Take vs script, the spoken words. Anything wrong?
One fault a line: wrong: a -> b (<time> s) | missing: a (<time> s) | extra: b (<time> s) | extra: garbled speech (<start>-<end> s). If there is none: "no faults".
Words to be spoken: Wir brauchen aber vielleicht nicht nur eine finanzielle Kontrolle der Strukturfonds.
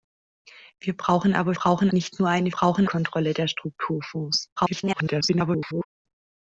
wrong: vielleicht -> brauchen (1.5 s)
wrong: finanzielle -> brauchen (2.5 s)
extra: garbled speech (4.6-5.8 s)